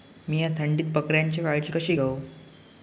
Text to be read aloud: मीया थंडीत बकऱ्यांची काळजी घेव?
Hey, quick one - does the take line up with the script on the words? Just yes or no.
no